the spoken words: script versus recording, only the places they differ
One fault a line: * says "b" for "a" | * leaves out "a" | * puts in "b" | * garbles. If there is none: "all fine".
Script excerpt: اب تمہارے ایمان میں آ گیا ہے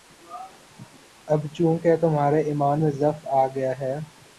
* puts in "چونکہ"
* puts in "ضعف"